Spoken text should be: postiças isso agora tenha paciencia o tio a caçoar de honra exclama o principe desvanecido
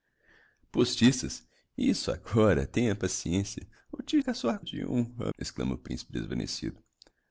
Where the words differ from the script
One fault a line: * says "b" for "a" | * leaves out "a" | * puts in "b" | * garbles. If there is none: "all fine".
all fine